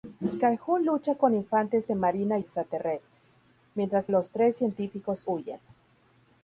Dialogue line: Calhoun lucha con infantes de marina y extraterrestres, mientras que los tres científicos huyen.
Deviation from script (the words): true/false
true